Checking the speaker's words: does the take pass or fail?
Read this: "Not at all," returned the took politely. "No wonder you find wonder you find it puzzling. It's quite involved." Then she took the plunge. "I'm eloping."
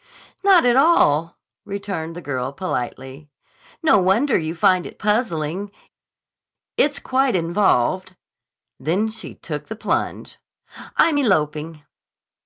fail